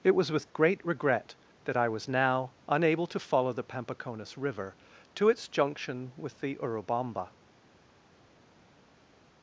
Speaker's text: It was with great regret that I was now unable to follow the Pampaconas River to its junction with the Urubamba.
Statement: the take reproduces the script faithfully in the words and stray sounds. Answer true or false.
true